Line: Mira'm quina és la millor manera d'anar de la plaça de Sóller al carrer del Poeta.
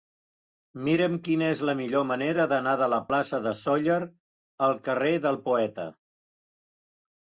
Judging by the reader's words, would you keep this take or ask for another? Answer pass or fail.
pass